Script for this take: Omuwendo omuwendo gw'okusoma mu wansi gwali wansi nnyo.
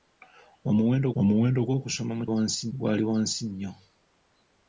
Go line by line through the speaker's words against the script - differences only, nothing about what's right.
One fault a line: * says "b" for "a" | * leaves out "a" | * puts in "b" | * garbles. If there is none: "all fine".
all fine